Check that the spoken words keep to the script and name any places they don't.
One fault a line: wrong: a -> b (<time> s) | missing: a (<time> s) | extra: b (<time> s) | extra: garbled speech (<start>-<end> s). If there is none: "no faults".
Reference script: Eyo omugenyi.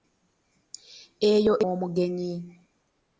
no faults